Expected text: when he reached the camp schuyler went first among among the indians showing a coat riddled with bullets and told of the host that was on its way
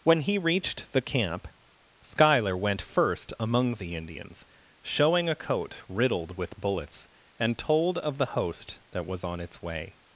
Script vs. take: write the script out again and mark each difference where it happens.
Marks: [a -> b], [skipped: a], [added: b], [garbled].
when he reached the camp schuyler went first among [skipped: among] the indians showing a coat riddled with bullets and told of the host that was on its way